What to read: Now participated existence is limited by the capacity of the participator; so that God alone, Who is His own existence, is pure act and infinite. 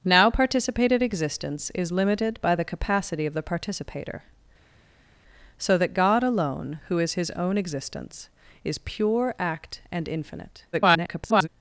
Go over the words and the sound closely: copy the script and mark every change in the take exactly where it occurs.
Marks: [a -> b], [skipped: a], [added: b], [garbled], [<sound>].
Now participated existence is limited by the capacity of the participator; so that God alone, Who is His own existence, is pure act and infinite. [garbled]